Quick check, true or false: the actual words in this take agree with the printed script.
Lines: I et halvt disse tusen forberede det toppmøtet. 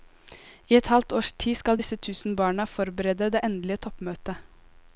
false